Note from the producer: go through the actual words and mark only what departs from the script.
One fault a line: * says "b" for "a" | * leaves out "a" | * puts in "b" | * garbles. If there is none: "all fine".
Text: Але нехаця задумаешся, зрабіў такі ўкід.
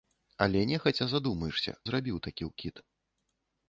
all fine